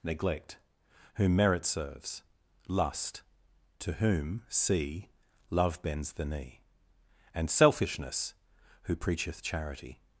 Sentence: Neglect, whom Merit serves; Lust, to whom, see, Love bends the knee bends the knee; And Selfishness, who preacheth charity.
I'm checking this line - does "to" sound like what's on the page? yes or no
yes